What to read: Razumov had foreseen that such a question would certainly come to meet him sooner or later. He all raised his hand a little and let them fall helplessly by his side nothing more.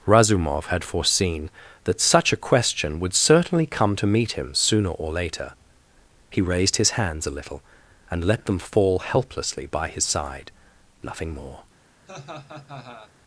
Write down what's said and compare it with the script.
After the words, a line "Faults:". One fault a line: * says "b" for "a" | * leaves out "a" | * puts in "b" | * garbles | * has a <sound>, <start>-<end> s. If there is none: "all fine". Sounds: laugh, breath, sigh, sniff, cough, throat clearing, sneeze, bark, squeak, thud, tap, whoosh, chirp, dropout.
Razumov had foreseen that such a question would certainly come to meet him sooner or later. He raised his hands a little and let them fall helplessly by his side nothing more.
Faults:
* leaves out "all"
* says "hands" for "hand"
* has a laugh, 12.1-13.1 s